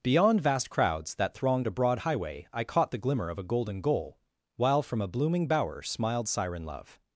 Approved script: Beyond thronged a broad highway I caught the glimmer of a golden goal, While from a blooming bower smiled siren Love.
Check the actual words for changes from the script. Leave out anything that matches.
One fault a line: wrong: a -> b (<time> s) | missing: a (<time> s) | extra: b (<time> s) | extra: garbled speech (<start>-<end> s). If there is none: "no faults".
extra: vast crowds that (0.4 s)